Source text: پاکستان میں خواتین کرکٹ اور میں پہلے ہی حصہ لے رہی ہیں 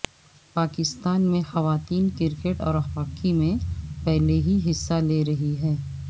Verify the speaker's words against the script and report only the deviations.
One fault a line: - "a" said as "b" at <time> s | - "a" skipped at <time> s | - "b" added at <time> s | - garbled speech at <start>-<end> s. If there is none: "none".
- "ہاکی" added at 2.9 s